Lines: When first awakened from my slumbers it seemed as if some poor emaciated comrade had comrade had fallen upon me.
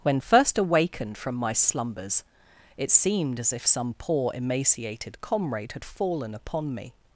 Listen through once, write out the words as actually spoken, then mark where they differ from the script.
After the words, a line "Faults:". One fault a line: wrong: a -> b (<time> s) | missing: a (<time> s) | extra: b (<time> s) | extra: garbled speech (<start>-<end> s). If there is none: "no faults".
When first awakened from my slumbers it seemed as if some poor emaciated comrade had fallen upon me.
Faults:
missing: comrade had (5.8 s)